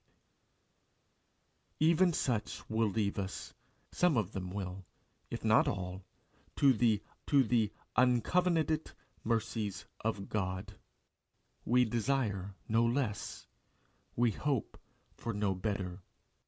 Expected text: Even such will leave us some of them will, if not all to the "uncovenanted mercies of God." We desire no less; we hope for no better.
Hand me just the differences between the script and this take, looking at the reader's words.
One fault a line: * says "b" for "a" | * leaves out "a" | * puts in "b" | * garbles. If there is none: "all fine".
* puts in "to the"